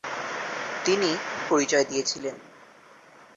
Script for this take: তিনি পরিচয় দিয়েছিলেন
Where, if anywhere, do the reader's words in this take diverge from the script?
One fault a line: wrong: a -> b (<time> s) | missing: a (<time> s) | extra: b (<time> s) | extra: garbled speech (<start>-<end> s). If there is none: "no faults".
no faults